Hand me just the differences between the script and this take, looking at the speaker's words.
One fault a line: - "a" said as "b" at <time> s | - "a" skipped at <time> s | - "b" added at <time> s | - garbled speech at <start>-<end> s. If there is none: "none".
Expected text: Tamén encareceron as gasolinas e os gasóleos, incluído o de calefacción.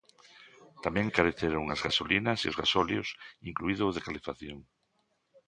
none